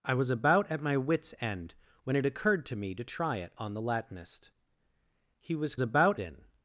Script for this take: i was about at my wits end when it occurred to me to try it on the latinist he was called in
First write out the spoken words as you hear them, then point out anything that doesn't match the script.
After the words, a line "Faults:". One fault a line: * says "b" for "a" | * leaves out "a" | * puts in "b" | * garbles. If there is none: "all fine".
i was about at my wits end when it occurred to me to try it on the latinist he was about in
Faults:
* says "about" for "called"